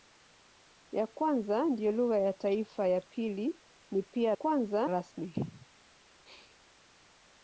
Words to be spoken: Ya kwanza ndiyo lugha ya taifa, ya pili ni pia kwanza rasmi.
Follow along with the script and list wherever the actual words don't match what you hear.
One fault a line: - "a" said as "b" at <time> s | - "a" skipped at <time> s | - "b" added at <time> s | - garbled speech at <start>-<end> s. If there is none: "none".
none